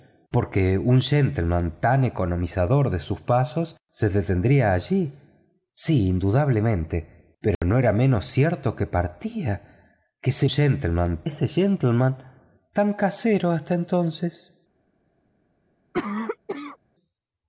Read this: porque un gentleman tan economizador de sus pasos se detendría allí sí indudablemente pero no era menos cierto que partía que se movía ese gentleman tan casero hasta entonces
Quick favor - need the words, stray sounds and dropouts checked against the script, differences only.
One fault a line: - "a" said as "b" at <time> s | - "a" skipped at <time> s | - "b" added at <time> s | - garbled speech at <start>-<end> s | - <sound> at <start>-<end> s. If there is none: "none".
- dropout at 7.5-7.6 s
- "movía" said as "gentleman" at 10.5 s
- cough at 15.9-16.8 s